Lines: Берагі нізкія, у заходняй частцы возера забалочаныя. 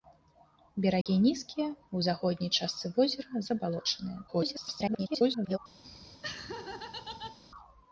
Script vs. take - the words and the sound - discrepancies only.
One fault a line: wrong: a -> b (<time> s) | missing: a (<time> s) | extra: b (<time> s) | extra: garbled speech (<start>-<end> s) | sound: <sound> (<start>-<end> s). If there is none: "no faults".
sound: dropout (1.0-1.1 s)
extra: garbled speech (4.3-5.6 s)
sound: laugh (5.8-7.4 s)